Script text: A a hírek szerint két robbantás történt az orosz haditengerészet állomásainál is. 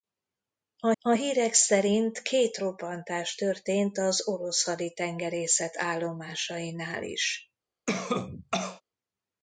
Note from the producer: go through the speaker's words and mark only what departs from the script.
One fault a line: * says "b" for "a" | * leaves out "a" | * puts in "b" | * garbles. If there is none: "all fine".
all fine